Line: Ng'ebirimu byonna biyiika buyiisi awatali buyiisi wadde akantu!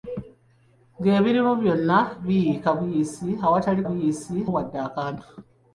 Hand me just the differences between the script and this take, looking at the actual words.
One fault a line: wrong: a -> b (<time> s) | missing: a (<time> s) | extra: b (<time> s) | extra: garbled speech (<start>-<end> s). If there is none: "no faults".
no faults